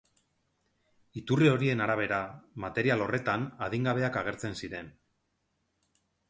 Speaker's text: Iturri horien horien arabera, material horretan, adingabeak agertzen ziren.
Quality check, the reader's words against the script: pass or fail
fail